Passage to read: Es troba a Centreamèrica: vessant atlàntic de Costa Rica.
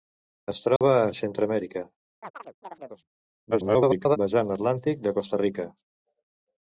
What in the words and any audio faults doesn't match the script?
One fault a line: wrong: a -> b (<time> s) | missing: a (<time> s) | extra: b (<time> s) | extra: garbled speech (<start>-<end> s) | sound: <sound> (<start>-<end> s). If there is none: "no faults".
sound: dropout (0.8-0.8 s)
sound: chirp (2.2-3.1 s)
extra: garbled speech (3.5-4.2 s)